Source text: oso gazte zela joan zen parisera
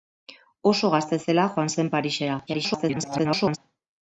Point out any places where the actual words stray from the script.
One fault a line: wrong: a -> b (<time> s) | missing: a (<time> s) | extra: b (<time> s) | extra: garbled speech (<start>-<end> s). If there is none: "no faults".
extra: garbled speech (2.5-3.6 s)